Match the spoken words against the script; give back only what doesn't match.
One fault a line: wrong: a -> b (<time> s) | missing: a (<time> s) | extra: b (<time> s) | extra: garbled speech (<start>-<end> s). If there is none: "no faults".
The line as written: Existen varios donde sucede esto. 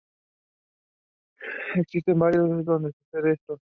no faults